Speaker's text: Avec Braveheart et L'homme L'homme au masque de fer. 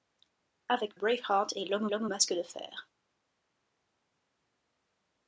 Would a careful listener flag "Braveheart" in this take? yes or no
no